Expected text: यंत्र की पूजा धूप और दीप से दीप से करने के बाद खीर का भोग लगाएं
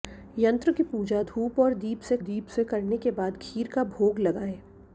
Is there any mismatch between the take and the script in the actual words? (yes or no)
no